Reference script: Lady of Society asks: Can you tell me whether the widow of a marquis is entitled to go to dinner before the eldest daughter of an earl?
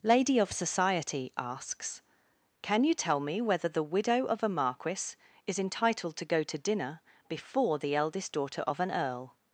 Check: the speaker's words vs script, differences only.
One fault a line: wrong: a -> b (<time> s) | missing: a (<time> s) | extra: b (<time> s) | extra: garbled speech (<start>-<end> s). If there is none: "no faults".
no faults